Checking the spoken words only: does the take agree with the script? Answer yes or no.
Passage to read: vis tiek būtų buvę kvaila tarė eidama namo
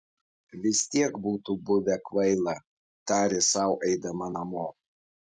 no